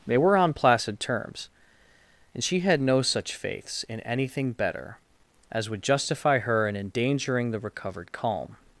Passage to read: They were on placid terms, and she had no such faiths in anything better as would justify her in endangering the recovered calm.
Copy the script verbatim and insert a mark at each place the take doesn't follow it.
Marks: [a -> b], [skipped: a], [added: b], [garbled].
They were on placid terms, and she had no such faiths in anything better as would justify her in endangering the recovered calm.